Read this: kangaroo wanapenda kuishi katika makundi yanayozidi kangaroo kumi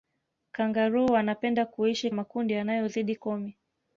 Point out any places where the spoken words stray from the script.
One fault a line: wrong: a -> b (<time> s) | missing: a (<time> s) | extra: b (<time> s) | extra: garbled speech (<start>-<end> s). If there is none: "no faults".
missing: katika (2.1 s)
missing: kangaroo (3.2 s)